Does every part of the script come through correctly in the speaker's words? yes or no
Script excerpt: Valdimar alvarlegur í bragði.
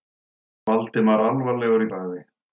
yes